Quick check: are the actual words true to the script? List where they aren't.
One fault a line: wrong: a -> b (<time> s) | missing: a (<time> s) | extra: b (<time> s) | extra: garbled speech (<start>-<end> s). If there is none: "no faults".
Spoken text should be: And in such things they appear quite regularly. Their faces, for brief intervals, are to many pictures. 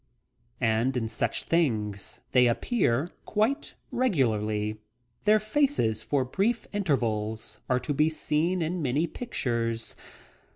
extra: be seen in (7.9 s)